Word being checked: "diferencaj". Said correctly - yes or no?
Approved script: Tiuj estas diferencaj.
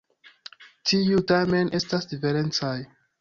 yes